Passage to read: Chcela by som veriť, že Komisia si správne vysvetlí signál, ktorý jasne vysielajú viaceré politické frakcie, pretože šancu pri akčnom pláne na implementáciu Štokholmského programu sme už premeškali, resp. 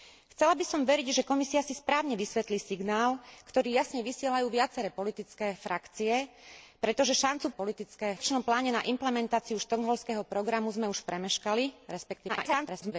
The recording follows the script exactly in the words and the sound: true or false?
false